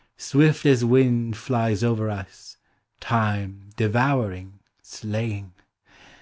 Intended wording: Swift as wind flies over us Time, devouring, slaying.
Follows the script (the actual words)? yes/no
yes